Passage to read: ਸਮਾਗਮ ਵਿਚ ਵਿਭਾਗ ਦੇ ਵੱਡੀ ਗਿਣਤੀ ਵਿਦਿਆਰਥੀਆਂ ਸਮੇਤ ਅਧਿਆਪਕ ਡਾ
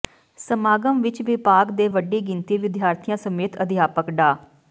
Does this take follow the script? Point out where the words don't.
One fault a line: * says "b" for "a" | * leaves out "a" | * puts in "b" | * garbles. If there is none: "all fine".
all fine